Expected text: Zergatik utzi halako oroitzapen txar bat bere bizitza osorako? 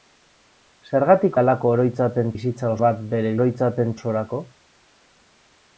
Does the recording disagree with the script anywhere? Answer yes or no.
yes